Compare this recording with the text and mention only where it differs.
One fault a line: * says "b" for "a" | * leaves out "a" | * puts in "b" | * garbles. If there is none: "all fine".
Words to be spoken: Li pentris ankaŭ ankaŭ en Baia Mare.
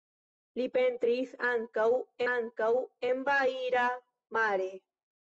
all fine